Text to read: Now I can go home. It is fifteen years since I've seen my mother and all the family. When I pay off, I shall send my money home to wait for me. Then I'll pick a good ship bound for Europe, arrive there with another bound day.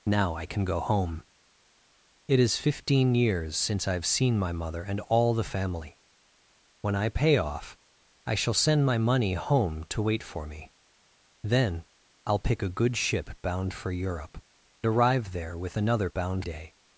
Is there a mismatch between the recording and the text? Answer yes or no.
no